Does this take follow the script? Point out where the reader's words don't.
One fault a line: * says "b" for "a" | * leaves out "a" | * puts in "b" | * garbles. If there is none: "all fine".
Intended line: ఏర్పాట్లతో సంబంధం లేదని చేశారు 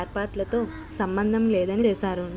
all fine